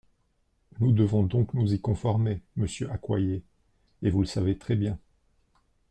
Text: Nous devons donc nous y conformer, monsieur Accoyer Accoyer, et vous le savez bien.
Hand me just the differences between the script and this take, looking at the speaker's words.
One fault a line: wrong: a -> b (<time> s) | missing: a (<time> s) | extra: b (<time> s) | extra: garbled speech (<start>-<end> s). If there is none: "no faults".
missing: Accoyer (3.4 s)
extra: très (4.6 s)